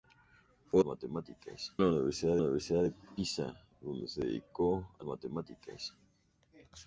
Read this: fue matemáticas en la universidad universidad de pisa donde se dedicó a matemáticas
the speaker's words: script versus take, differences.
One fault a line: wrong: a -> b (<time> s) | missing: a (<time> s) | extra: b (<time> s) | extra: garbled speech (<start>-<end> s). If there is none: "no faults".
no faults